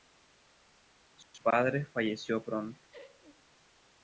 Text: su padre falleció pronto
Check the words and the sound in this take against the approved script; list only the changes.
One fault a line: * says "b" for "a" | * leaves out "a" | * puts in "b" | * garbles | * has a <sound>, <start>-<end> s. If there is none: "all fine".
* has a laugh, 2.9-3.4 s